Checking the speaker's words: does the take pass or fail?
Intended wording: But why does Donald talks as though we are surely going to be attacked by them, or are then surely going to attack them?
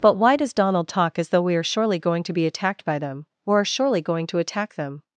fail